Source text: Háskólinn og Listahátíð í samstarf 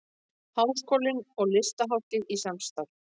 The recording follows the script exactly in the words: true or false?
true